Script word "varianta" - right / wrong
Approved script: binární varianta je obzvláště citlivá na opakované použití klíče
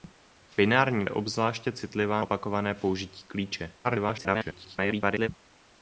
wrong